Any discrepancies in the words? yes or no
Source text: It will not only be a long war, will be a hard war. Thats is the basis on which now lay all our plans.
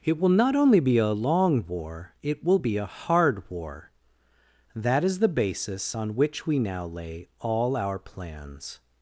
yes